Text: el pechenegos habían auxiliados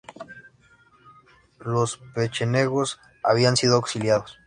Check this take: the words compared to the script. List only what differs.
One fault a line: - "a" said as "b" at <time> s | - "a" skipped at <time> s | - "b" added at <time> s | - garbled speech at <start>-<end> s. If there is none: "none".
- "el" said as "los" at 1.6 s
- "sido" added at 3.6 s